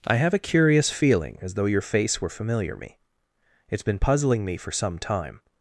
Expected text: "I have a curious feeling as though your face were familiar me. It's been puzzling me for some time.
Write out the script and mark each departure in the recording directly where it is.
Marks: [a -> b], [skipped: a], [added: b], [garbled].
"I have a curious feeling as though your face were familiar me. It's been puzzling me for some time.